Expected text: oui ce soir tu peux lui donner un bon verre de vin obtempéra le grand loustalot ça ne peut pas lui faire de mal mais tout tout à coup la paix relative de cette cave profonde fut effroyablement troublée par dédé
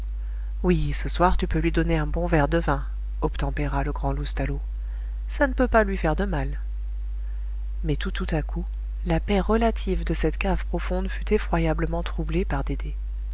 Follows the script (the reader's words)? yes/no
yes